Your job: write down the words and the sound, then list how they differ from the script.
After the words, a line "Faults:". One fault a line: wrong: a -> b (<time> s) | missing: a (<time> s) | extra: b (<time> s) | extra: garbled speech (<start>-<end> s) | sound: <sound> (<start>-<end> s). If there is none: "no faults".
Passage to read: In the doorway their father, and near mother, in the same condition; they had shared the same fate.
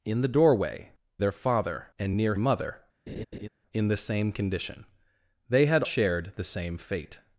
In the doorway their father, and near mother, in the same condition; they had shared the same fate.
Faults:
sound: laugh (3.1-3.5 s)